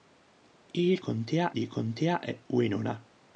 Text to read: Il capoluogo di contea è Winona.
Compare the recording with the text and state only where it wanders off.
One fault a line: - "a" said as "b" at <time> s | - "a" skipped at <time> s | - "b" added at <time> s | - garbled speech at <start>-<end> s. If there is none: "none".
- "capoluogo" said as "contea" at 1.0 s